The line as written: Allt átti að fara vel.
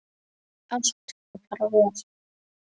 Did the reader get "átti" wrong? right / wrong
wrong